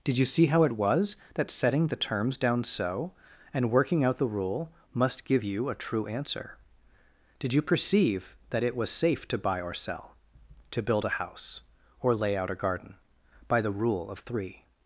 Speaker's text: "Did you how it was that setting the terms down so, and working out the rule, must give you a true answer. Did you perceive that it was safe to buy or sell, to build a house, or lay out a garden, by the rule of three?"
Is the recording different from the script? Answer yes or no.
yes